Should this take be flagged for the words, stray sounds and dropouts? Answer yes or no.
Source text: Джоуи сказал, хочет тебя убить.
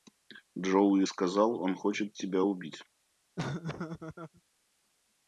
yes